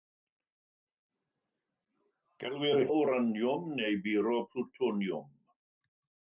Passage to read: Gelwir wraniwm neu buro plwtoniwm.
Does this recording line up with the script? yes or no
yes